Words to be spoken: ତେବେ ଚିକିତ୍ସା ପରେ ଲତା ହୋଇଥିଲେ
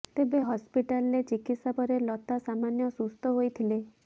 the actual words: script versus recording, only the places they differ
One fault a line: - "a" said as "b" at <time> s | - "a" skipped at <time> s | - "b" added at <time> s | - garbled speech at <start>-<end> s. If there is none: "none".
- "ହସ୍ପିଟାଲରେ" added at 0.4 s
- "ସାମାନ୍ୟ ସୁସ୍ଥ" added at 2.5 s